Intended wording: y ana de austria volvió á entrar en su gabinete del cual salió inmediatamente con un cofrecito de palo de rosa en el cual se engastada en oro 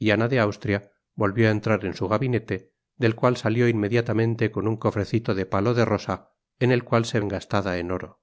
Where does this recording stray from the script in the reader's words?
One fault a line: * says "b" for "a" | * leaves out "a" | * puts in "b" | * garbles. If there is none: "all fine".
all fine